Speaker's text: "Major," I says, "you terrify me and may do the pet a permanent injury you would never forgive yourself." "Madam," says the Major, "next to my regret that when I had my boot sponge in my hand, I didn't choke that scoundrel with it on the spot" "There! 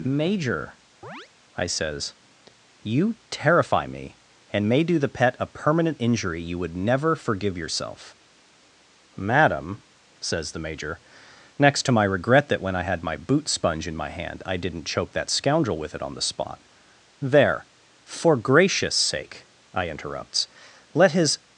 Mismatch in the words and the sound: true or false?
true